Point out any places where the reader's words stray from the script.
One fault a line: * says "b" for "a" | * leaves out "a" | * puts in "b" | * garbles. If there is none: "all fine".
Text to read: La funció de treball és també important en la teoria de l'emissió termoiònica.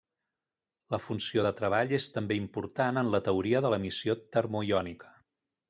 all fine